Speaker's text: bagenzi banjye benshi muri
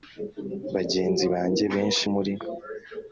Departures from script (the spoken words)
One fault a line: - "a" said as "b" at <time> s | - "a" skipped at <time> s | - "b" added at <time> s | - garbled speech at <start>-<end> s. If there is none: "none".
none